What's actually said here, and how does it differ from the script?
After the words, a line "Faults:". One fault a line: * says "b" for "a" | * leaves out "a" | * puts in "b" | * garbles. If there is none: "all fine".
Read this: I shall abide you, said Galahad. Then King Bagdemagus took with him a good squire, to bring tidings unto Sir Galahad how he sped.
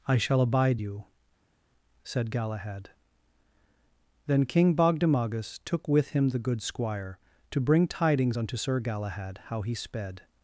I shall abide you, said Galahad. Then King Bagdemagus took with him the good squire, to bring tidings unto Sir Galahad how he sped.
Faults:
* says "the" for "a"